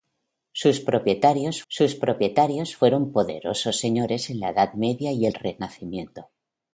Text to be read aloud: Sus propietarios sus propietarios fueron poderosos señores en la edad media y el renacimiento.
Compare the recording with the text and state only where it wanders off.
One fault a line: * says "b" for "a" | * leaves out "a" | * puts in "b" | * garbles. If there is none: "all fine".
all fine